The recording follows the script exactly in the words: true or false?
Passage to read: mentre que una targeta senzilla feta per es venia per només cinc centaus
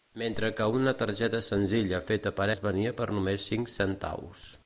true